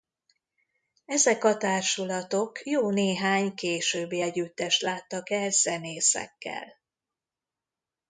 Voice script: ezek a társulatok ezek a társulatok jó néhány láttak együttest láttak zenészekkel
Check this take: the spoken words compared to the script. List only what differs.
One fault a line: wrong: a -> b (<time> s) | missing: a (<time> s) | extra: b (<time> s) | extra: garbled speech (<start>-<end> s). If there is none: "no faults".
missing: ezek a társulatok (2.7 s)
wrong: láttak -> későbbi (3.5 s)
extra: el (5.3 s)